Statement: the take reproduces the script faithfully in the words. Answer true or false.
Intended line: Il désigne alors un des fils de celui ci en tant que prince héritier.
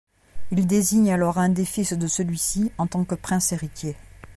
true